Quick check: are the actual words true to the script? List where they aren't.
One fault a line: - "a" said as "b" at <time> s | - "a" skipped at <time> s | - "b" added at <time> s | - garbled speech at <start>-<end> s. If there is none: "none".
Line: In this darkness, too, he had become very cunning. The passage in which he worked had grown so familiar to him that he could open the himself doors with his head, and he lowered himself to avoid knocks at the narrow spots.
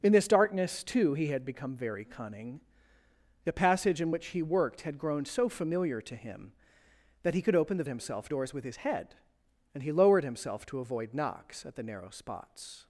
none